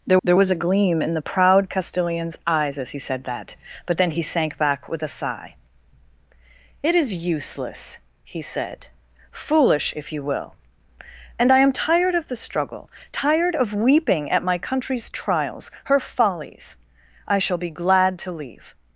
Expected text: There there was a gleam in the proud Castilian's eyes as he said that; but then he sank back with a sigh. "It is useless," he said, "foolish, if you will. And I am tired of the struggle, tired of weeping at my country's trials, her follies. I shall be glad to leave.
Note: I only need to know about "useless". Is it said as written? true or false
true